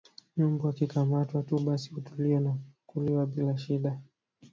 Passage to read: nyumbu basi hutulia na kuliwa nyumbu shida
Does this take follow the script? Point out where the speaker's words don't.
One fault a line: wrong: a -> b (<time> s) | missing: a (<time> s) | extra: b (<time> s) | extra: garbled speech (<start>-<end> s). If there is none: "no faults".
extra: akikamatwa tu (0.7 s)
wrong: nyumbu -> bila (3.2 s)